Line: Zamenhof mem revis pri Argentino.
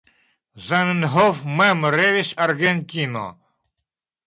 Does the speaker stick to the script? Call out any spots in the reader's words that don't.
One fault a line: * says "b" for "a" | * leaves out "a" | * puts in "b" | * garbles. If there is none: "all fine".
* leaves out "pri"